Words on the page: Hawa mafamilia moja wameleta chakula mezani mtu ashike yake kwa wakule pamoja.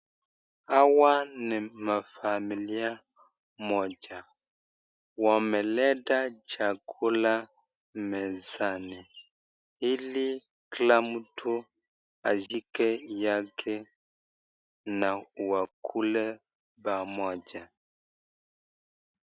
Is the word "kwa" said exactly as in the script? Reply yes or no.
no